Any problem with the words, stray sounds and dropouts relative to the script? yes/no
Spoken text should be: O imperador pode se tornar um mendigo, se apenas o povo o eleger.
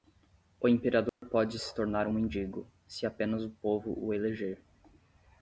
yes